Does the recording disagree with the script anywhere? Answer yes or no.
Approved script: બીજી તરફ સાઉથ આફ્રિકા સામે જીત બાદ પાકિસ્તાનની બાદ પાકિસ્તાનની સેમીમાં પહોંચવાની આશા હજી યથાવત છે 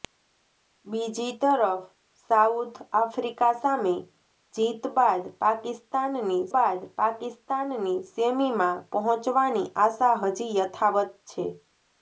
no